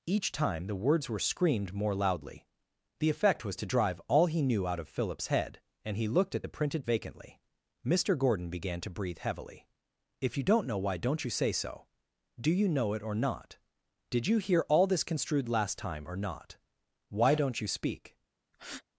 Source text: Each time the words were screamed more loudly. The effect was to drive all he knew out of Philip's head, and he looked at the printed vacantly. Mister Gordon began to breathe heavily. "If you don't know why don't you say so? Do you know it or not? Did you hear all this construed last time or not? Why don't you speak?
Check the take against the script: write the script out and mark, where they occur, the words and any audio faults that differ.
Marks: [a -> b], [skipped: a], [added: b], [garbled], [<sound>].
Each time the words were screamed more loudly. The effect was to drive all he knew out of Philip's head, and he looked at the printed vacantly. Mister Gordon began to breathe heavily. "If you don't know why don't you say so? Do you know it or not? Did you hear all this construed last time or not? Why don't you speak? [breath]